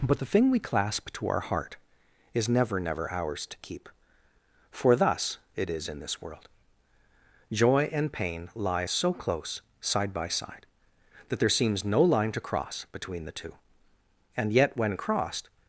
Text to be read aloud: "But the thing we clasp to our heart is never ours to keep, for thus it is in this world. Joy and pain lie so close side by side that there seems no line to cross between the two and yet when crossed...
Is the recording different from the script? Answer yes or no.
yes